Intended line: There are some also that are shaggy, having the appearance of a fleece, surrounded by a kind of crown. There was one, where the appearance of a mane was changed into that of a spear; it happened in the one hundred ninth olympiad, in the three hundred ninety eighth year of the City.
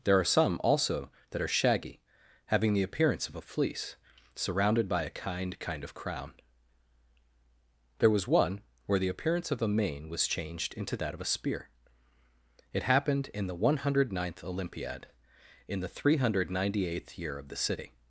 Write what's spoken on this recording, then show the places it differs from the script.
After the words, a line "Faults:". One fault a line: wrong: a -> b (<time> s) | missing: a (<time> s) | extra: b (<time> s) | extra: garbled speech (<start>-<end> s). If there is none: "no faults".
There are some also that are shaggy, having the appearance of a fleece, surrounded by a kind kind of crown. There was one, where the appearance of a mane was changed into that of a spear; it happened in the one hundred ninth olympiad, in the three hundred ninety eighth year of the City.
Faults:
extra: kind (5.6 s)